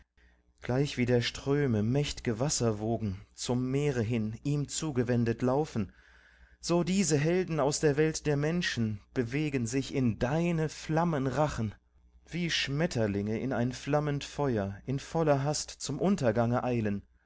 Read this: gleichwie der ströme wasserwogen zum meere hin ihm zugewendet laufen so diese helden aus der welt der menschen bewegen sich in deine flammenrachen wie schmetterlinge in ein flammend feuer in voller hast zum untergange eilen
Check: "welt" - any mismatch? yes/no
no